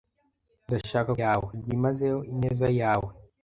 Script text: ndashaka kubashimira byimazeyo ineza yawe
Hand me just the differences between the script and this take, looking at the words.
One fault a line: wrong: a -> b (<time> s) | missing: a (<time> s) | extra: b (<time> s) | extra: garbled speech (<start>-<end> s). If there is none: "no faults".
wrong: kubashimira -> yawe (1.2 s)